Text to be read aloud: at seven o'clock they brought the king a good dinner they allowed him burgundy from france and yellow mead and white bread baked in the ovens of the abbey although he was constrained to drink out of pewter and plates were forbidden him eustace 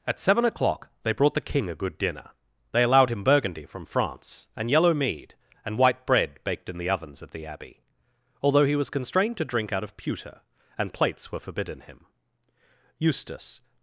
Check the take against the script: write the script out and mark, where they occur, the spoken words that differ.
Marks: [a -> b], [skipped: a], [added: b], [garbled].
at seven o'clock they brought the king a good dinner they allowed him burgundy from france and yellow mead and white bread baked in the ovens of the abbey although he was constrained to drink out of pewter and plates were forbidden him eustace